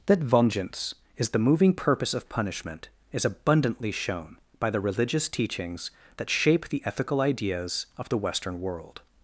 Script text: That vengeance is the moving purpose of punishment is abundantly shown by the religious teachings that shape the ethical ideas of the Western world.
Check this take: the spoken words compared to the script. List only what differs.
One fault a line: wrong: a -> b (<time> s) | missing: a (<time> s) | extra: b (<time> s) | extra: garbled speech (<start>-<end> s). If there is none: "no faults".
no faults